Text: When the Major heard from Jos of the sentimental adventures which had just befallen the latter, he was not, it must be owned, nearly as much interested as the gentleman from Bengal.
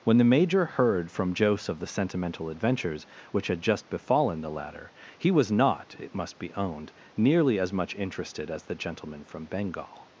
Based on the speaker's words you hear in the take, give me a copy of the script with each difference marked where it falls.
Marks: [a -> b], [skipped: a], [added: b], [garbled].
When the Major heard from Jos of the sentimental adventures which had just befallen the latter, he was not, it must be owned, nearly as much interested as the gentleman from Bengal.